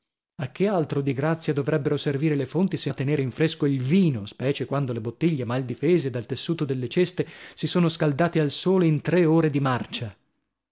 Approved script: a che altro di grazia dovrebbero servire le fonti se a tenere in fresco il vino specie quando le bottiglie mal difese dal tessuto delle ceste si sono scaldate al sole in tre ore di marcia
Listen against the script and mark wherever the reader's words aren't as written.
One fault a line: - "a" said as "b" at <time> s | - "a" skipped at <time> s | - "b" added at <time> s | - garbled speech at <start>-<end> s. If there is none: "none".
none